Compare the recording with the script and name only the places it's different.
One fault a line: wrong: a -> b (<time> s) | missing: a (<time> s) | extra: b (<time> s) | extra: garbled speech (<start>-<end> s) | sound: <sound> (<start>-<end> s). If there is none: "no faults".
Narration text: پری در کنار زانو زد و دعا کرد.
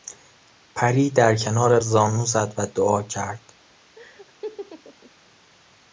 sound: laugh (4.0-5.1 s)